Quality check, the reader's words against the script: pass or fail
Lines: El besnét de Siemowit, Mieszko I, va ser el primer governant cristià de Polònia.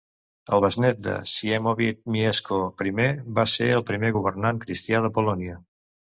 pass